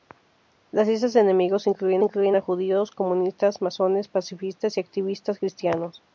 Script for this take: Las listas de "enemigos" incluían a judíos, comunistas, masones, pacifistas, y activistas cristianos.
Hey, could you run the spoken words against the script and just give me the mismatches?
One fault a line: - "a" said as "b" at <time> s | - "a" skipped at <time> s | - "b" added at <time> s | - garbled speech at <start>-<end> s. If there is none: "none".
- "incluían" added at 2.0 s